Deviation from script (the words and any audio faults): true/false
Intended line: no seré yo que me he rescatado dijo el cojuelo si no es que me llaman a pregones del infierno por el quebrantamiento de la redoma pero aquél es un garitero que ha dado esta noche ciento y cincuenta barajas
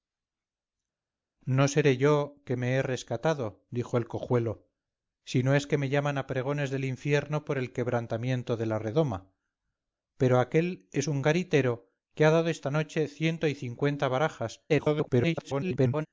true